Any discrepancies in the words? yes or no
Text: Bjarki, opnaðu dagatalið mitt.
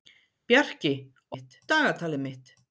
yes